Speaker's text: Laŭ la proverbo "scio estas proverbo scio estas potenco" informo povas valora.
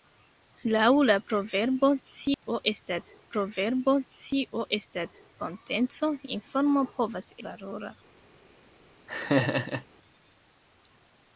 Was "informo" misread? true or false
false